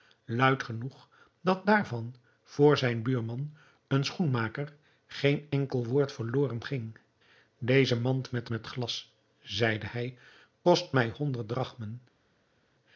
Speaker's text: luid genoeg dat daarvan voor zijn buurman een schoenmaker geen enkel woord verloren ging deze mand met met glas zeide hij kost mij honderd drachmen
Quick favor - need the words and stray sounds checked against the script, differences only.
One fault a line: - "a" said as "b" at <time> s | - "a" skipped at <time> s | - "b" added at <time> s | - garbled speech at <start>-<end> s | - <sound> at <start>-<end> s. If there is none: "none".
none